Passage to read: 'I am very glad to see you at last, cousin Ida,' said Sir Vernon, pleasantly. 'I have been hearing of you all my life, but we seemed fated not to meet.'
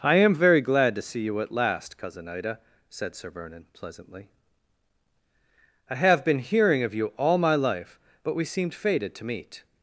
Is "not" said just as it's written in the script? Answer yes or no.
no